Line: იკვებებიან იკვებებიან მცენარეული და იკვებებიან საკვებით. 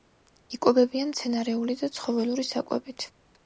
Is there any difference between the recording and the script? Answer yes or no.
yes